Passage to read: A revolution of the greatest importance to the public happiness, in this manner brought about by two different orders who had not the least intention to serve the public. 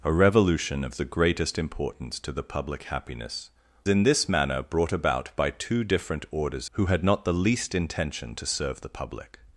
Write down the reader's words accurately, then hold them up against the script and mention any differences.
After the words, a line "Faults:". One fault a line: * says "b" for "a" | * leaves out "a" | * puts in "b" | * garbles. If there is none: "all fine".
A revolution of the greatest importance to the public happiness, in this manner brought about by two different orders who had not the least intention to serve the public.
Faults:
all fine